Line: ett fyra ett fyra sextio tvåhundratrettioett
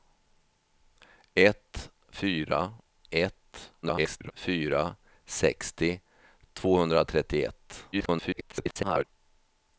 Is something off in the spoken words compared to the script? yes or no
yes